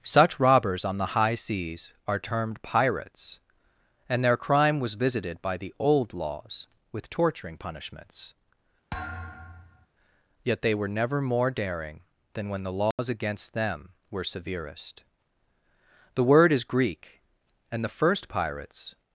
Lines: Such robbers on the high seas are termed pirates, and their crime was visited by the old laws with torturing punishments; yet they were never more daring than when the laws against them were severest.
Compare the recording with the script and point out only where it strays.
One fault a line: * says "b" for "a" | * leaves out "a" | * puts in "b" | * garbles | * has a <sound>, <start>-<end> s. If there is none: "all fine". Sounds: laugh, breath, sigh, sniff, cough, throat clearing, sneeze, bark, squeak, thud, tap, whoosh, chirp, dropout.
* has a thud, 8.9-9.9 s
* has a dropout, 12.9-13.0 s
* puts in "The word is Greek and the first pirates"